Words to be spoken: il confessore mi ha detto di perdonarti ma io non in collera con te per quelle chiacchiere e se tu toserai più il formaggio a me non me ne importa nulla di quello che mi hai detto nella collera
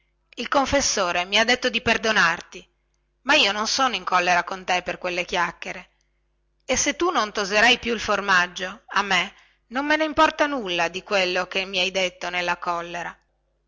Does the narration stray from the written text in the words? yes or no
yes